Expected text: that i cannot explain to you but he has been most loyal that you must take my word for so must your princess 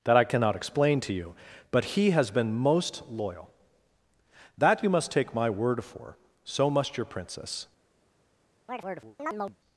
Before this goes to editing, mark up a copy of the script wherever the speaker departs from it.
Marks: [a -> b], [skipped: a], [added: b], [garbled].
that i cannot explain to you but he has been most loyal that you must take my word for so must your princess